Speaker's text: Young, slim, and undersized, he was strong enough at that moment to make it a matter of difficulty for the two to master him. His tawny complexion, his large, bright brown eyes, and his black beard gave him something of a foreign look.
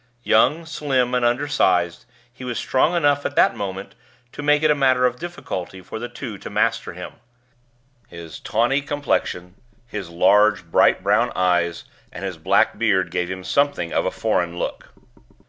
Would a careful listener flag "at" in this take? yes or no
no